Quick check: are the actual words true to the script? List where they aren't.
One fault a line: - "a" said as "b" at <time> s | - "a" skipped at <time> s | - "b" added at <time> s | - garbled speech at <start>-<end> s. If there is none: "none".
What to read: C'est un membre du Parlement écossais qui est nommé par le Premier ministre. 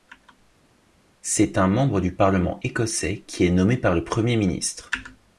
none